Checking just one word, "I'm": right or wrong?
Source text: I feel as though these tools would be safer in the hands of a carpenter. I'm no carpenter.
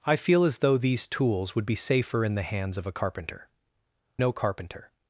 wrong